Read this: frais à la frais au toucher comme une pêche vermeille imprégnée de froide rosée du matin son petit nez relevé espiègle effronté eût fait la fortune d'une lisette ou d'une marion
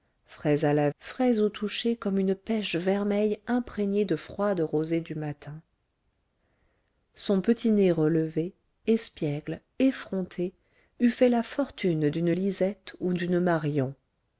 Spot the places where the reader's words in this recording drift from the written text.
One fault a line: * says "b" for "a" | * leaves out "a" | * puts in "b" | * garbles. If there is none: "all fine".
all fine